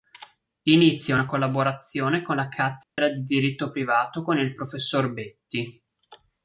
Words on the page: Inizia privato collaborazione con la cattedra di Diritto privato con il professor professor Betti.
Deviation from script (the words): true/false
true